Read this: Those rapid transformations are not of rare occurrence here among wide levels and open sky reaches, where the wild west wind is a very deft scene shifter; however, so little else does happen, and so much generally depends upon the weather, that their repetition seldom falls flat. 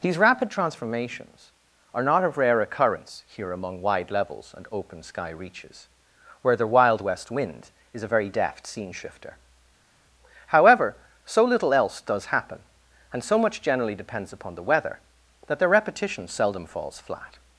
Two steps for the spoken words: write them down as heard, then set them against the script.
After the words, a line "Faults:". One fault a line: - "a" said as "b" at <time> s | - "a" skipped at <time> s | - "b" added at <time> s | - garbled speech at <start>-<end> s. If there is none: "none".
These rapid transformations are not of rare occurrence here among wide levels and open sky reaches, where the wild west wind is a very deft scene shifter; however, so little else does happen, and so much generally depends upon the weather, that their repetition seldom falls flat.
Faults:
- "Those" said as "These" at 0.0 s